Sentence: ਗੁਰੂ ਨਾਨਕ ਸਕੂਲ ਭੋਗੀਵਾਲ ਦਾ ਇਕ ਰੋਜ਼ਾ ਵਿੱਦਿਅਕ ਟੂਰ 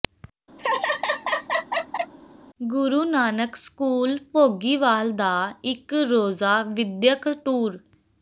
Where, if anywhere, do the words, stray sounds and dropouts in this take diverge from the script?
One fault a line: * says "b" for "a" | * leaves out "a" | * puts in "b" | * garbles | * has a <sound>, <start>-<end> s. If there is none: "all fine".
* has a laugh, 0.6-2.1 s